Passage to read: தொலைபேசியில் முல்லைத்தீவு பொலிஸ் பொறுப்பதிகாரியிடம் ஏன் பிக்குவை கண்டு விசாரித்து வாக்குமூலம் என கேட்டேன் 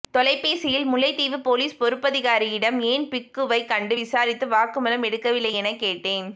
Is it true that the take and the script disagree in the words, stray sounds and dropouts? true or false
true